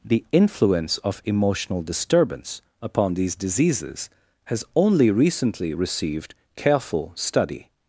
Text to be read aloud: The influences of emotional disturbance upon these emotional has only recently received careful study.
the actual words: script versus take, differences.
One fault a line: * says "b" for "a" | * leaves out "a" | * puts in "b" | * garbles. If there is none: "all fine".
* says "influence" for "influences"
* says "diseases" for "emotional"